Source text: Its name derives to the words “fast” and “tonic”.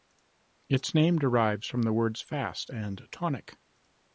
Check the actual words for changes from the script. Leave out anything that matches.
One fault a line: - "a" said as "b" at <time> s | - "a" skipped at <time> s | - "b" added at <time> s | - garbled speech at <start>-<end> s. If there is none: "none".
- "to" said as "from" at 1.7 s